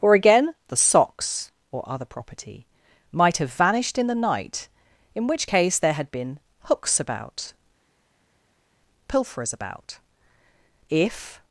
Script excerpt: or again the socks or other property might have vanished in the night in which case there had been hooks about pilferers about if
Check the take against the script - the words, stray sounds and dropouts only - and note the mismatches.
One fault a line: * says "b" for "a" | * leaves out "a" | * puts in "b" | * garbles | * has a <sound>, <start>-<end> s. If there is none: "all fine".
all fine